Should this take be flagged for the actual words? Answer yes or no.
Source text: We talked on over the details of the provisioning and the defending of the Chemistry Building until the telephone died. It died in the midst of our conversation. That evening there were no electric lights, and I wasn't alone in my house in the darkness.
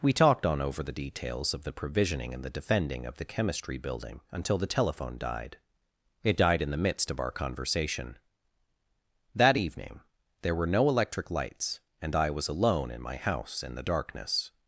yes